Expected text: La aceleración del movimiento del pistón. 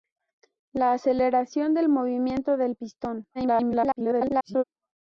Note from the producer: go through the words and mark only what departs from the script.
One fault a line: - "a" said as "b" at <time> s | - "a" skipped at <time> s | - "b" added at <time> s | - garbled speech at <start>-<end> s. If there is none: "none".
- garbled speech at 3.3-4.6 s